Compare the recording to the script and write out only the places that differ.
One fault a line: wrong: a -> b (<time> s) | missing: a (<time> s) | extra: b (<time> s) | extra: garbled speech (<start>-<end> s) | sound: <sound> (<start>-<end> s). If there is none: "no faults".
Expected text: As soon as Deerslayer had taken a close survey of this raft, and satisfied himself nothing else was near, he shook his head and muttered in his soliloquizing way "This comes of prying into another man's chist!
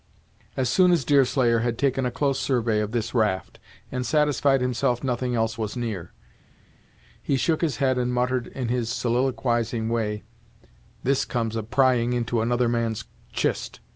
no faults